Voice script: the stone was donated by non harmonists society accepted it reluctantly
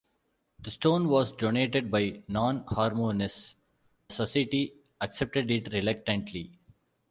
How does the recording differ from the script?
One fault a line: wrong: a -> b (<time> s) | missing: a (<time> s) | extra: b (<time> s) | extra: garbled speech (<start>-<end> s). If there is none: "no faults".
no faults